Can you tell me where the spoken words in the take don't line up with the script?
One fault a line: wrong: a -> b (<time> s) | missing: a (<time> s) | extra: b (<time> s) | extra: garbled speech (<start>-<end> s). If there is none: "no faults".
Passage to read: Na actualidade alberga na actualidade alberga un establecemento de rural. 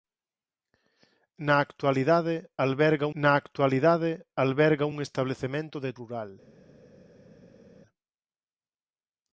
no faults